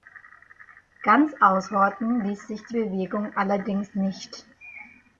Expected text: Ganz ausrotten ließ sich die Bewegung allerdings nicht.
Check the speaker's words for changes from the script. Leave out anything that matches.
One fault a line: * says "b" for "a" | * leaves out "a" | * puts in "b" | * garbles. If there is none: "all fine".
all fine